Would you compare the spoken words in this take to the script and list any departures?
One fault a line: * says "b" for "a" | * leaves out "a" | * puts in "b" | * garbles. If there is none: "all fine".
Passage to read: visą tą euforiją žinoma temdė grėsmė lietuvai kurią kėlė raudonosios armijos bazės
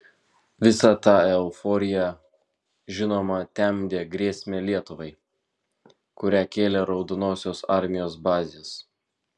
all fine